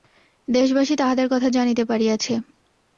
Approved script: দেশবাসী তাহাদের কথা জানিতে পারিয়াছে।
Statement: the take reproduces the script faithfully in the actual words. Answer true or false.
true